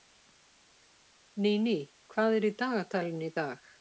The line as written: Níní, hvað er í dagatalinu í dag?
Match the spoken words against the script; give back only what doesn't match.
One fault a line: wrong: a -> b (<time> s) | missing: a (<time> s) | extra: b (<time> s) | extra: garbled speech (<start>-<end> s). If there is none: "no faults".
no faults